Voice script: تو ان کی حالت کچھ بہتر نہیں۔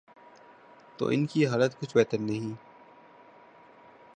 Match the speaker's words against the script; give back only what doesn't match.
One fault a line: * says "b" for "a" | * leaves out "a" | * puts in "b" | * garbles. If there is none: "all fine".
all fine